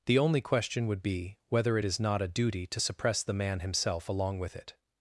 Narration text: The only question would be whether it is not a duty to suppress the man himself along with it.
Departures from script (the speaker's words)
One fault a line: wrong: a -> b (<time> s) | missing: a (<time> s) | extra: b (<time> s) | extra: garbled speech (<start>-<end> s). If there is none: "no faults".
no faults